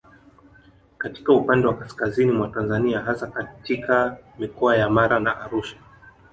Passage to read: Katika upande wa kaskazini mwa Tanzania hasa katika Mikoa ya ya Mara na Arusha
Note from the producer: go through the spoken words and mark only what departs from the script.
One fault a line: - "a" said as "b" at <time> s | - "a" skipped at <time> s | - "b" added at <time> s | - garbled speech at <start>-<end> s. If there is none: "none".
- "ya" skipped at 4.9 s